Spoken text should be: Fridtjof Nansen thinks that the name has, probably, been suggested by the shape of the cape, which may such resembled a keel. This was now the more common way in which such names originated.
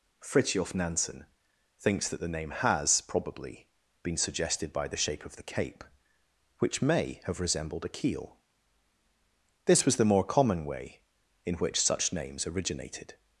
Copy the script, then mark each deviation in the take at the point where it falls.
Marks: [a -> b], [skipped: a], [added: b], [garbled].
Fridtjof Nansen thinks that the name has, probably, been suggested by the shape of the cape, which may [such -> have] resembled a keel. This was [skipped: now] the more common way in which such names originated.